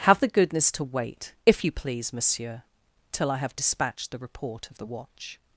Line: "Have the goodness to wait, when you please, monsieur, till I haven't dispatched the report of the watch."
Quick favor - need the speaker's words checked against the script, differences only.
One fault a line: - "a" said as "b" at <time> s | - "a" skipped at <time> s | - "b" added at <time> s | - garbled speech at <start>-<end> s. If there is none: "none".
- "when" said as "if" at 1.5 s
- "haven't" said as "have" at 3.4 s